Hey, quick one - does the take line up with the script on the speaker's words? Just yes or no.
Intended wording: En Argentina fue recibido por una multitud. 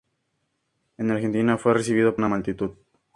no